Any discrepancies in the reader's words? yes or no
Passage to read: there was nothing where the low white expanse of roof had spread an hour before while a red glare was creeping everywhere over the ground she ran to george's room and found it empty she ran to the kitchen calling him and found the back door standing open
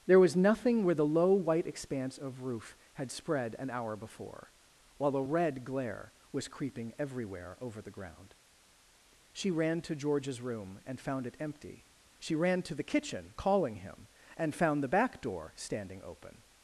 no